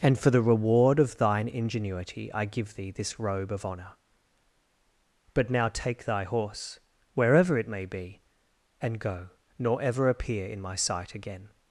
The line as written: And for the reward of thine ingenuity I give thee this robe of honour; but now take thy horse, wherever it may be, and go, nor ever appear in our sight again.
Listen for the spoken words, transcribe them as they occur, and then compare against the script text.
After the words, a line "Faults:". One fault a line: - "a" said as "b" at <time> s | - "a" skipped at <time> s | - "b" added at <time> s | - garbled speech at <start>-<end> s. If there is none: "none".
And for the reward of thine ingenuity I give thee this robe of honour; but now take thy horse, wherever it may be, and go, nor ever appear in my sight again.
Faults:
- "our" said as "my" at 10.6 s